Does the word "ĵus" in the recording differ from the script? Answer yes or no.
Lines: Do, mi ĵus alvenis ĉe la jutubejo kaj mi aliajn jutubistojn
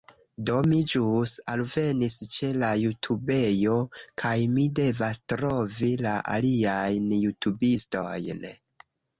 no